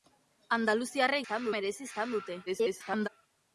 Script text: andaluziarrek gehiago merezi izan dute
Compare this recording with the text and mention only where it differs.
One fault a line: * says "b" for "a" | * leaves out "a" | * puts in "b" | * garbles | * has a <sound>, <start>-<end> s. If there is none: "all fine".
* says "izan" for "gehiago"
* garbles